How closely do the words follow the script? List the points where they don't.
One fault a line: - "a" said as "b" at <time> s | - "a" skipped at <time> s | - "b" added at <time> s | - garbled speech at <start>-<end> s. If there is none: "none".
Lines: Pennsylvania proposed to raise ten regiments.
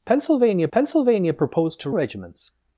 - "pennsylvania" added at 0.7 s
- "raise ten" skipped at 1.9 s